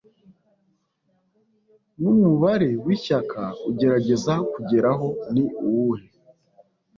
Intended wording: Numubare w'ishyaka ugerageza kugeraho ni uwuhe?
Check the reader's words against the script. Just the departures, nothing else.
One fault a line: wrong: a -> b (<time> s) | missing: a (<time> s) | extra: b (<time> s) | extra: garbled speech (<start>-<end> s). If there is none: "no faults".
no faults